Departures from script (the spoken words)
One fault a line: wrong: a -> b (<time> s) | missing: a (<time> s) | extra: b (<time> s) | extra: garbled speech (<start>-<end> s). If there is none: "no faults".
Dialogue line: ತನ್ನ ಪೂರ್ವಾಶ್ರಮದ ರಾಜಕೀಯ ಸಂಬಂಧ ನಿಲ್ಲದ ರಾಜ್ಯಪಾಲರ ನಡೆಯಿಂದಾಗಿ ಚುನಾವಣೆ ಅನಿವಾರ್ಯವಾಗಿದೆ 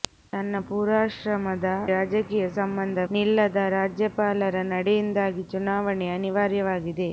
no faults